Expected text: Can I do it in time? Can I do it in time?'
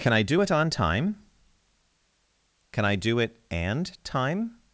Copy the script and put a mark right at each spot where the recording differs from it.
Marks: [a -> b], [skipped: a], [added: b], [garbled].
Can I do it [in -> on] time? Can I do it [in -> and] time?'